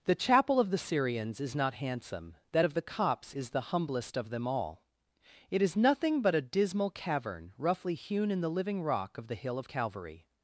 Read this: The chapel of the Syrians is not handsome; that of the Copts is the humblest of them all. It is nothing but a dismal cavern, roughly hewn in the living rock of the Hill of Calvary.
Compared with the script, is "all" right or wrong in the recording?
right